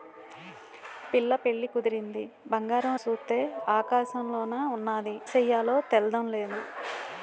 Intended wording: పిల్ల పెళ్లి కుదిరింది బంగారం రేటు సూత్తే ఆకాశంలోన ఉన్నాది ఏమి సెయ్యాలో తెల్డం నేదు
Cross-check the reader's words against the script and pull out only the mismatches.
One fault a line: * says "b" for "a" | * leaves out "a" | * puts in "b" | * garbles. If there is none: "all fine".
* leaves out "రేటు"
* leaves out "ఏమి"